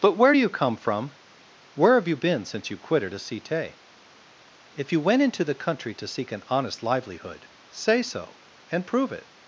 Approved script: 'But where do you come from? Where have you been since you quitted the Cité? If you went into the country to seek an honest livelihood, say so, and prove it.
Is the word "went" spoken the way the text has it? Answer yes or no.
yes